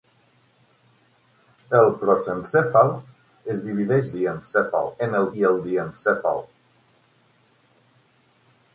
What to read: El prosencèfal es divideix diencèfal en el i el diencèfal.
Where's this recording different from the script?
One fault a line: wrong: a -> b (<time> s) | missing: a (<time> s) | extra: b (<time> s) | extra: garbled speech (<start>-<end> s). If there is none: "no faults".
no faults